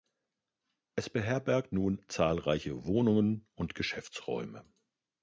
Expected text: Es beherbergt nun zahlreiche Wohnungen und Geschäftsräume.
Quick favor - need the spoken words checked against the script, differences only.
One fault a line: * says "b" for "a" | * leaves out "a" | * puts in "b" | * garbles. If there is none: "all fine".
all fine